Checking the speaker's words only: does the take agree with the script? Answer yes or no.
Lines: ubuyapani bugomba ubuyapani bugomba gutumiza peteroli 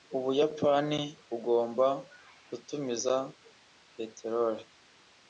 no